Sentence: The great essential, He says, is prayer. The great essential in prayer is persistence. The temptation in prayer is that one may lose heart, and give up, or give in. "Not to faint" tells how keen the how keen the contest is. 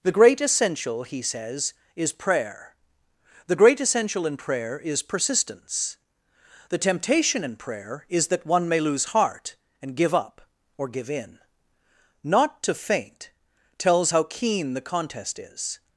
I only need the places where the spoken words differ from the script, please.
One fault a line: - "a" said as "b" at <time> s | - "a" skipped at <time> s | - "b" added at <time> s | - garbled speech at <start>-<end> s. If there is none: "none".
- "how keen the" skipped at 14.9 s